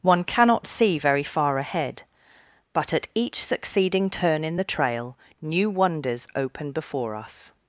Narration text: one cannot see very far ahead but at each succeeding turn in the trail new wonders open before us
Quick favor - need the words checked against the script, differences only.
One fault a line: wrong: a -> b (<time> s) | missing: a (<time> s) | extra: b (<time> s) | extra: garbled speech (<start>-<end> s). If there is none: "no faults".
no faults